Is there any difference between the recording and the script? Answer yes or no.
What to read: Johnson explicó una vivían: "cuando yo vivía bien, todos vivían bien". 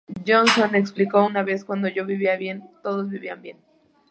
yes